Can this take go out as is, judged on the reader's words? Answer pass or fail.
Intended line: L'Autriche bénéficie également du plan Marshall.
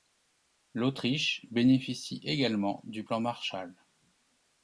pass